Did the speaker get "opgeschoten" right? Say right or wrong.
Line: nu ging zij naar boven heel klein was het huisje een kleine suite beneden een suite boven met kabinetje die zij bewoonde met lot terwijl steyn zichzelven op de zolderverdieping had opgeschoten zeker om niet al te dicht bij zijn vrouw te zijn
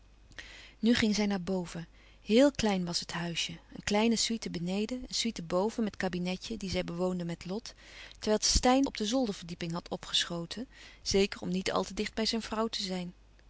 right